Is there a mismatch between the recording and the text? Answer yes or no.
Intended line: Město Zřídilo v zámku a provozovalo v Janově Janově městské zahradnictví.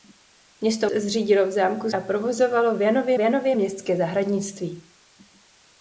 no